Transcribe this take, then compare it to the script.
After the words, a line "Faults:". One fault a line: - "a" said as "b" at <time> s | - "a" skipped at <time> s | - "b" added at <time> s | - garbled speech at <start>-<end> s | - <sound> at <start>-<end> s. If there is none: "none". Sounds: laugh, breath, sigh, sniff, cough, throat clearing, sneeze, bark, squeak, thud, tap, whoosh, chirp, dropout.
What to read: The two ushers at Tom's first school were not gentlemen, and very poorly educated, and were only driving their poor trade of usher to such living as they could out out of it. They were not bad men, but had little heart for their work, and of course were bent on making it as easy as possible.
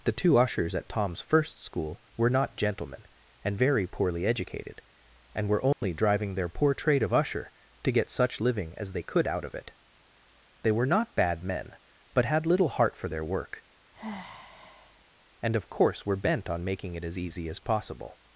The two ushers at Tom's first school were not gentlemen, and very poorly educated, and were only driving their poor trade of usher to get such living as they could out of it. They were not bad men, but had little heart for their work, and of course were bent on making it as easy as possible.
Faults:
- dropout at 5.7-5.8 s
- "get" added at 7.9 s
- "out" skipped at 9.4 s
- sigh at 13.9-15.1 s